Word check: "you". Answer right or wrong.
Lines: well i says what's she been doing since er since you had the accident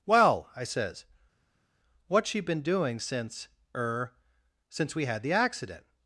wrong